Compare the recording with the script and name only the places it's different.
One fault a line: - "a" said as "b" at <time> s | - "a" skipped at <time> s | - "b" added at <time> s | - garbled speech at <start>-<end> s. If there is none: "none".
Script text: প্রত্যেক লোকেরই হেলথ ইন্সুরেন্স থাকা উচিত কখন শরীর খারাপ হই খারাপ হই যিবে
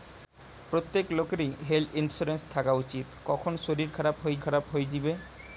none